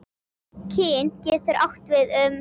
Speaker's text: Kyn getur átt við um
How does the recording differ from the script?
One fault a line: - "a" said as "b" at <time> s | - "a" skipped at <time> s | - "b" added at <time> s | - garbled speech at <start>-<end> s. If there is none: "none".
none